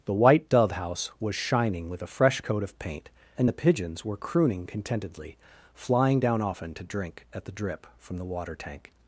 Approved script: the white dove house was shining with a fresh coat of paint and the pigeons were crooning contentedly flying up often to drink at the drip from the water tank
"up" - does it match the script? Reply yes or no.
no